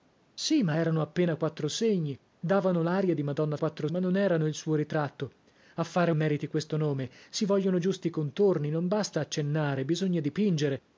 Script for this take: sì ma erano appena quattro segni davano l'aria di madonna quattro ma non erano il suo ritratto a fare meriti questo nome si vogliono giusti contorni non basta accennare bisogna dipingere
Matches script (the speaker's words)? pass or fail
pass